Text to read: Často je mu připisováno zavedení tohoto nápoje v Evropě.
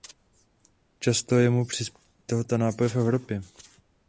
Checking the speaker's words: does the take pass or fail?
fail